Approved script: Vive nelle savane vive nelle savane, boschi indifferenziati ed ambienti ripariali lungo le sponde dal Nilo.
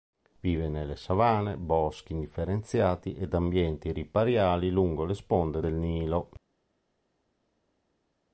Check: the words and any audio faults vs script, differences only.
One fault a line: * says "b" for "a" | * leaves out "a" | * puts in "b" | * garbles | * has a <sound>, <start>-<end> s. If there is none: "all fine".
* leaves out "vive nelle savane"
* says "del" for "dal"